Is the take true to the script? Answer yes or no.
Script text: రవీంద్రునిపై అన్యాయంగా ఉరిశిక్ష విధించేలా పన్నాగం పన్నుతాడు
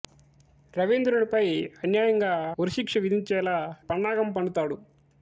yes